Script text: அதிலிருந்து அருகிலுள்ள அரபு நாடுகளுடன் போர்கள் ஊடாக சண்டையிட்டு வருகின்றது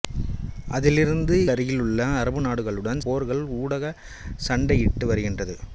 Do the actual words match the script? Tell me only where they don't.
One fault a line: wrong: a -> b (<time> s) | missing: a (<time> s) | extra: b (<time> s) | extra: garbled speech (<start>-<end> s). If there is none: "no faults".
no faults